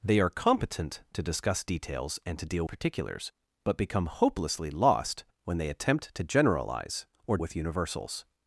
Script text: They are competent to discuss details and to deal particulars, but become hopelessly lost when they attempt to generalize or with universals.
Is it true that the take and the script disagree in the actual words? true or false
false